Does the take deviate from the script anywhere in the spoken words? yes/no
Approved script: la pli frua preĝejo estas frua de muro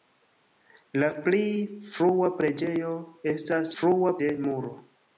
no